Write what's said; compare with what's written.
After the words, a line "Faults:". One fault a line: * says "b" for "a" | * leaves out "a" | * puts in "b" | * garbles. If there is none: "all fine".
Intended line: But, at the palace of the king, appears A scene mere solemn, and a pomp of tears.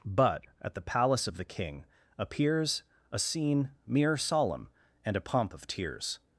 But, at the palace of the king, appears A scene mere solemn, and a pomp of tears.
Faults:
all fine